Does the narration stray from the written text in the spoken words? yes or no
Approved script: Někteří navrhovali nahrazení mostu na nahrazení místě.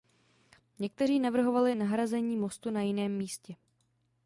yes